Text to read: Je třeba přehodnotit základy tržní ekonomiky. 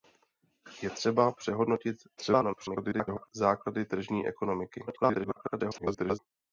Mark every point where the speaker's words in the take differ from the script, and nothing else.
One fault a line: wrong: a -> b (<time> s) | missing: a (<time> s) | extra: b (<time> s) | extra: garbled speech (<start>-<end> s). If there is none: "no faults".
extra: garbled speech (2.2-3.3 s)
extra: garbled speech (4.9-6.2 s)